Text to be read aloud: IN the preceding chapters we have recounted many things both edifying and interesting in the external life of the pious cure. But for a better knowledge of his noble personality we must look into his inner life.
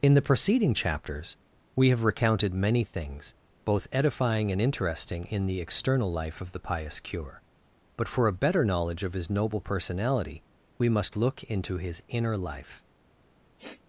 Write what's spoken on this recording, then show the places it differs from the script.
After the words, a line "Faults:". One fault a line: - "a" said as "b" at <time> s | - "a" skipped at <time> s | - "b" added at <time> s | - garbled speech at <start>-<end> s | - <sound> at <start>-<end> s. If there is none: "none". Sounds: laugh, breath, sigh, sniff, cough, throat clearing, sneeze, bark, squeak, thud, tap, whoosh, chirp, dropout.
IN the preceding chapters we have recounted many things both edifying and interesting in the external life of the pious cure. But for a better knowledge of his noble personality we must look into his inner life.
Faults:
- sniff at 13.6-13.8 s